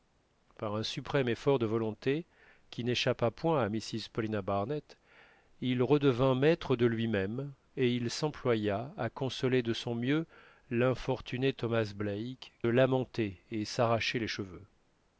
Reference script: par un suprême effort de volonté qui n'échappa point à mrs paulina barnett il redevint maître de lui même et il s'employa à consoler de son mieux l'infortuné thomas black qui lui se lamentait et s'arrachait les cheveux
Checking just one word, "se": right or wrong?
wrong